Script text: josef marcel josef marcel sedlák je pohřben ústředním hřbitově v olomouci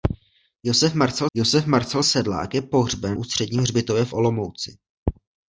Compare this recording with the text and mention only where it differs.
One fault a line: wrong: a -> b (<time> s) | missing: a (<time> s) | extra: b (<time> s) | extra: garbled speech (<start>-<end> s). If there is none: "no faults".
no faults